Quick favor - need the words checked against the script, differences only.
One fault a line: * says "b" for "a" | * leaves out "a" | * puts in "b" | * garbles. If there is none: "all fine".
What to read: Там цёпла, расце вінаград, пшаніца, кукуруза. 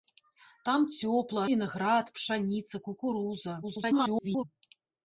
* leaves out "расце"
* garbles